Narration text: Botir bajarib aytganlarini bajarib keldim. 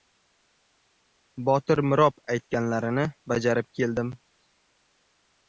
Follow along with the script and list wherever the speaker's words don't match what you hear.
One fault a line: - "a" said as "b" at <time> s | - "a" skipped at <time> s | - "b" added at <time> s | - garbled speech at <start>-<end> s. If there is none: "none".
- "bajarib" said as "mirob" at 1.9 s